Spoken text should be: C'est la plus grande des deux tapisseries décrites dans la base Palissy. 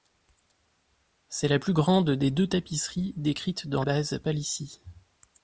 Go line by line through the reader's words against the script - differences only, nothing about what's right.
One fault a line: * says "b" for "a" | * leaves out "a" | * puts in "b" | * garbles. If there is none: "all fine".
* leaves out "la"